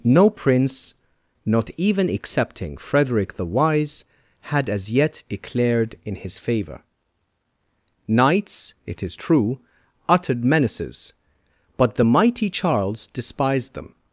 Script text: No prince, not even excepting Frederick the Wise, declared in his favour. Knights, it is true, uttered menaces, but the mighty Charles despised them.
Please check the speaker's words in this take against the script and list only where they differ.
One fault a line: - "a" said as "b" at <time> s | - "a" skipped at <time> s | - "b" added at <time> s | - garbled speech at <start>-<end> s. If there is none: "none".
- "had as yet" added at 4.5 s